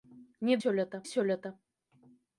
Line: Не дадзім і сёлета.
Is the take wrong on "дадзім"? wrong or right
wrong